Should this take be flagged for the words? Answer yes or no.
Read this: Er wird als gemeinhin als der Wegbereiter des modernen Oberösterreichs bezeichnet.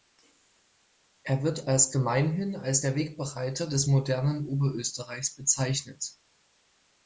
no